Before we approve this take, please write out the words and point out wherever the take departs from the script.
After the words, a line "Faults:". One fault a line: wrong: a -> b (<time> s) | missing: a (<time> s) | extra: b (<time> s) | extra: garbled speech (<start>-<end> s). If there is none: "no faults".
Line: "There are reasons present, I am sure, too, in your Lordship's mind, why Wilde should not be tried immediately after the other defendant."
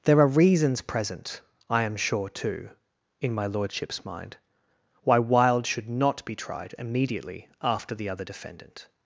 "There are reasons present, I am sure, too, in my Lordship's mind, why Wilde should not be tried immediately after the other defendant."
Faults:
wrong: your -> my (3.3 s)